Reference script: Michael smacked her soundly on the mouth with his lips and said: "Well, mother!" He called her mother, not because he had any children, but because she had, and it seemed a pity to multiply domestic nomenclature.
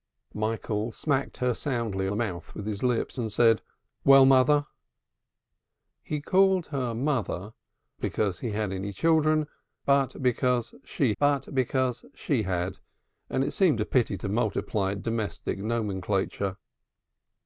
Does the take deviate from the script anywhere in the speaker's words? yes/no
yes